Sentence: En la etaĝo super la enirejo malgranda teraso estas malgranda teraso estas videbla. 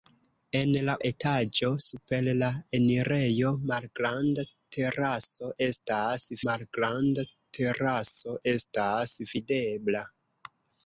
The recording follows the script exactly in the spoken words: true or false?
true